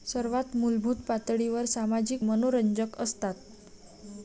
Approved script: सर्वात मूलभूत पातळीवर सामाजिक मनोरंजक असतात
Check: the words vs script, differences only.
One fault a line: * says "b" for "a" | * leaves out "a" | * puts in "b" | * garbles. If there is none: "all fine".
all fine